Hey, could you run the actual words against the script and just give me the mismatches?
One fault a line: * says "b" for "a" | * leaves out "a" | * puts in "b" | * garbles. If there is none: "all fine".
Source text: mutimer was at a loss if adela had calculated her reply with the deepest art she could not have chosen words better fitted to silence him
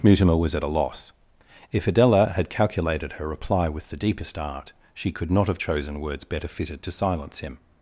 all fine